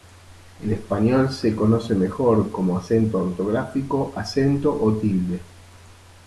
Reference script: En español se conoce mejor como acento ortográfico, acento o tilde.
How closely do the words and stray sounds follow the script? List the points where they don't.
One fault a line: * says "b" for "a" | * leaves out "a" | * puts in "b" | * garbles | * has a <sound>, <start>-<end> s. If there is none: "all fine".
all fine